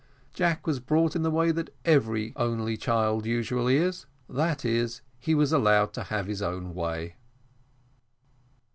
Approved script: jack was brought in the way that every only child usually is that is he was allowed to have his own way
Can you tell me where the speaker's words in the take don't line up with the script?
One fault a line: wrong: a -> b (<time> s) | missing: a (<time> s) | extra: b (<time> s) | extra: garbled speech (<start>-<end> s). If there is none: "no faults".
no faults